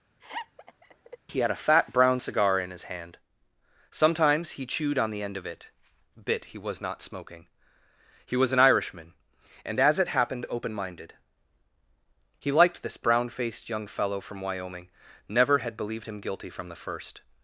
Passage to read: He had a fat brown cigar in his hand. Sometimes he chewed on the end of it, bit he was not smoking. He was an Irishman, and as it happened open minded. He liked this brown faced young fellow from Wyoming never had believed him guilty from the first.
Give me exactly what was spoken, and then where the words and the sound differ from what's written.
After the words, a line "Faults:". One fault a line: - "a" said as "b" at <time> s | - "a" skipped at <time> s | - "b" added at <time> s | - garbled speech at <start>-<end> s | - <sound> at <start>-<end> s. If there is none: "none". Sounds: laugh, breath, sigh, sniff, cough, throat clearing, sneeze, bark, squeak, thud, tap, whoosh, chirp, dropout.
He had a fat brown cigar in his hand. Sometimes he chewed on the end of it, bit he was not smoking. He was an Irishman, and as it happened open minded. He liked this brown faced young fellow from Wyoming never had believed him guilty from the first.
Faults:
- laugh at 0.2-1.2 s